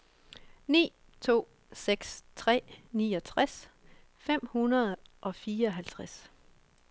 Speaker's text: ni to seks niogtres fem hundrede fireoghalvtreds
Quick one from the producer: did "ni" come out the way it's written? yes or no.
yes